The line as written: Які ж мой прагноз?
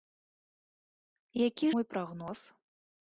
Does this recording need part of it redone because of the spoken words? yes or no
yes